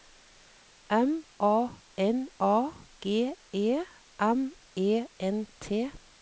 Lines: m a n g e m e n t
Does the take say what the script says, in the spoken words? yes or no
no